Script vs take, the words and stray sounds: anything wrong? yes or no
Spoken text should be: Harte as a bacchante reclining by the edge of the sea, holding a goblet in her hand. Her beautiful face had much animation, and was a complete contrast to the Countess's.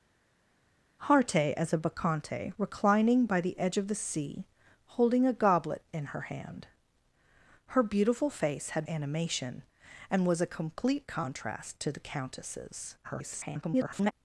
yes